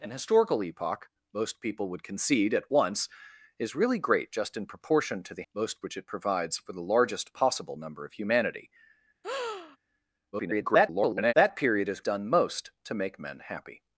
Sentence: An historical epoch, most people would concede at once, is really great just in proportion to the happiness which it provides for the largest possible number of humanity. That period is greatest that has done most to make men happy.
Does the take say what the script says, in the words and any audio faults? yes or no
no